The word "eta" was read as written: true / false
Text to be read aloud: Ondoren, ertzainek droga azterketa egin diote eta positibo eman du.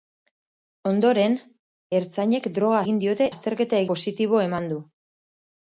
false